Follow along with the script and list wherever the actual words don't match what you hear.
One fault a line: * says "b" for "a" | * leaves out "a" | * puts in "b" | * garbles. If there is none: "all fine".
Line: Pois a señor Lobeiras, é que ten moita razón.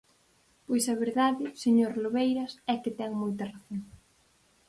* puts in "verdade"